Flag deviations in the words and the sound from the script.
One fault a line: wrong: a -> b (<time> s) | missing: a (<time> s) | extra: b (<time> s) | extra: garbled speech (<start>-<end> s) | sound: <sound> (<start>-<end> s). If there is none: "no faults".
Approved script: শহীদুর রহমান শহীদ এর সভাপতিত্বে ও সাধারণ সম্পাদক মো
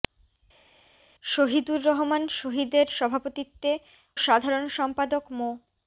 missing: ও (3.7 s)